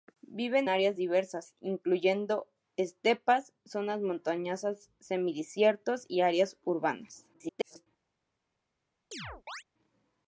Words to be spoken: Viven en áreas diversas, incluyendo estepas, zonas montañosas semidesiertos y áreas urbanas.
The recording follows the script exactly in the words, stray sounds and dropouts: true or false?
false